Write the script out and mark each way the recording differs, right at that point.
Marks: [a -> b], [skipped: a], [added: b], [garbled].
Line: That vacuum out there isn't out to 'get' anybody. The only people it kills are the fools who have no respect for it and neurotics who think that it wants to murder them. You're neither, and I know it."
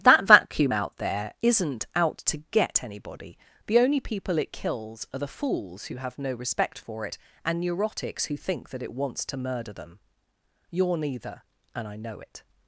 That vacuum out there isn't out to 'get' anybody. The only people it kills are the fools who have no respect for it and neurotics who think that it wants to murder them. You're neither, and I know it."